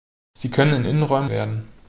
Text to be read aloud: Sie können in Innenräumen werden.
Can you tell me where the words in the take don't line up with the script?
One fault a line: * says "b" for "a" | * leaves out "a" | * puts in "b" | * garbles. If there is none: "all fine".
all fine